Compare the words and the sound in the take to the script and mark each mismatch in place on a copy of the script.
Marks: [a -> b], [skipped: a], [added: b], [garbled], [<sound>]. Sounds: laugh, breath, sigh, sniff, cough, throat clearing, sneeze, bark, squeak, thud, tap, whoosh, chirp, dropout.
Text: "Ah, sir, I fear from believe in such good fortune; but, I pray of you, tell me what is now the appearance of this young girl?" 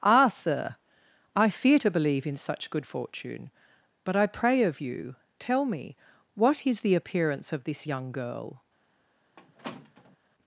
"Ah, sir, I fear [from -> to] believe in such good fortune; but, I pray of you, tell me what is [skipped: now] the appearance of this young girl?" [squeak]